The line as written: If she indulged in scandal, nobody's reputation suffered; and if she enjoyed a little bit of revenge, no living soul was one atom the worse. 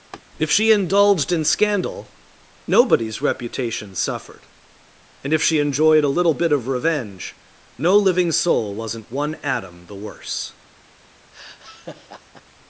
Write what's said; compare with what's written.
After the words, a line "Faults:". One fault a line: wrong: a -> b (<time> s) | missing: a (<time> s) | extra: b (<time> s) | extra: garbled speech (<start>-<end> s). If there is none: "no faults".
If she indulged in scandal, nobody's reputation suffered; and if she enjoyed a little bit of revenge, no living soul wasn't one atom the worse.
Faults:
wrong: was -> wasn't (8.7 s)